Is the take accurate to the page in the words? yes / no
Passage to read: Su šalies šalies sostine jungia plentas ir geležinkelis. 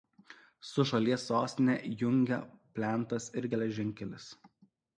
no